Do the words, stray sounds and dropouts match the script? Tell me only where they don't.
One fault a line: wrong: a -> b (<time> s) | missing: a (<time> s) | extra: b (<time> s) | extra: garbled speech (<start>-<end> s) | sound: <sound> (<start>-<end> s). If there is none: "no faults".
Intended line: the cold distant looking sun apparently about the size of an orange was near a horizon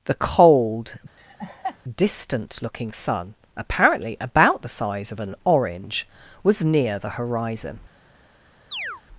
sound: laugh (1.2-1.8 s)
wrong: a -> the (7.0 s)
sound: chirp (8.7-9.0 s)